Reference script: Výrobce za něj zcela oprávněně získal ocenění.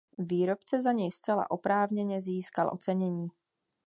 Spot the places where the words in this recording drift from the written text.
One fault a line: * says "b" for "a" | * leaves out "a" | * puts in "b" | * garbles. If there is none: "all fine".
all fine